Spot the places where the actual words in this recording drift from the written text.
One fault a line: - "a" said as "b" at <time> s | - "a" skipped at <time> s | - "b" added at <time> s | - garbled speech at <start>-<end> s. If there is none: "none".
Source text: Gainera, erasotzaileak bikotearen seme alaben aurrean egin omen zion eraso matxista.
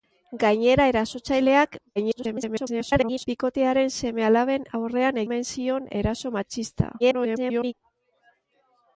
- garbled speech at 2.0-3.3 s
- "egin" skipped at 5.2 s
- garbled speech at 7.0-7.7 s